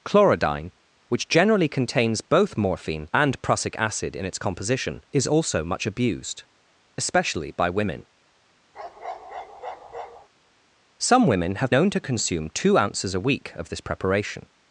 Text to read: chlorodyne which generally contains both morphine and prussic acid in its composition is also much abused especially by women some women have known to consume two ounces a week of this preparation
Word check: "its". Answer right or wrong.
right